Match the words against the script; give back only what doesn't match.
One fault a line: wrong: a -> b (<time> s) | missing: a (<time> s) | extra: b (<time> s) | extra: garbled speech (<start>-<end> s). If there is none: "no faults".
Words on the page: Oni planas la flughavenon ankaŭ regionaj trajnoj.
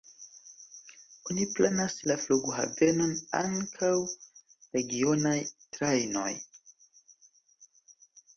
no faults